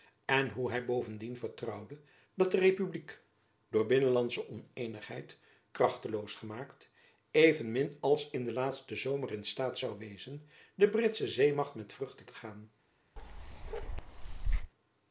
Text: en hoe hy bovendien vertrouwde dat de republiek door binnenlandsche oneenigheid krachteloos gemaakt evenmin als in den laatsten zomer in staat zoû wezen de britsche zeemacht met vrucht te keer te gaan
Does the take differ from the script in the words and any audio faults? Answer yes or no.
yes